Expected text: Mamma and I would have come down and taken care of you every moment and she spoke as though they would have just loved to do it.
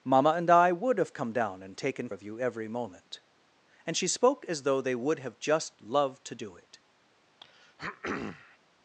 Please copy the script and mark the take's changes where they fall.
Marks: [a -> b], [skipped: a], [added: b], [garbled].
Mamma and I would have come down and taken [skipped: care] of you every moment and she spoke as though they would have just loved to do it.